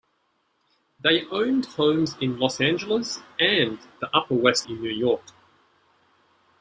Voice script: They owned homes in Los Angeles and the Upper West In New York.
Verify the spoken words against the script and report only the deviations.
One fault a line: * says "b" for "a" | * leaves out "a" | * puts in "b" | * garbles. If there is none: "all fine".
all fine